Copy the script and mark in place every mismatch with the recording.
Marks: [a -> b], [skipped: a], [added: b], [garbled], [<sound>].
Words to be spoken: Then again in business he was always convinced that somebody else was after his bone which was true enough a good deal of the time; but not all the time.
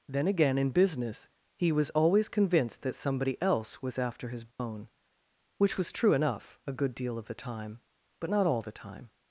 Then again in business he was always convinced that somebody else was after his bone [dropout] which was true enough a good deal of the time; but not all the time.